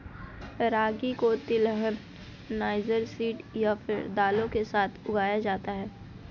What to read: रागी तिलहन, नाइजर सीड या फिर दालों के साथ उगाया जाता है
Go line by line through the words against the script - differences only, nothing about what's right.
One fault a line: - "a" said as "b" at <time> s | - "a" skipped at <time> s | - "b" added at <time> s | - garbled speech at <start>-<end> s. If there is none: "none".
- "को" added at 1.1 s